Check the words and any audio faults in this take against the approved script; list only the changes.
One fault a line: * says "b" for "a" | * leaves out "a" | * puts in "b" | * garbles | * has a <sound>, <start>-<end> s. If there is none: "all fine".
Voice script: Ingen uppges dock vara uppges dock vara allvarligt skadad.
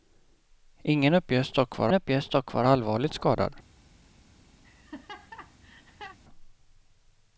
* has a laugh, 4.6-6.2 s